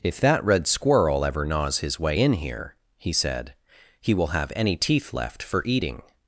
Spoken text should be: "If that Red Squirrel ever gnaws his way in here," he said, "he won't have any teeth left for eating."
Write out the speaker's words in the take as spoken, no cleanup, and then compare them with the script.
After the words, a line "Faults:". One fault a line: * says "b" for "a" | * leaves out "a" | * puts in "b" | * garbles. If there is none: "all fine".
"If that Red Squirrel ever gnaws his way in here," he said, "he will have any teeth left for eating."
Faults:
* says "will" for "won't"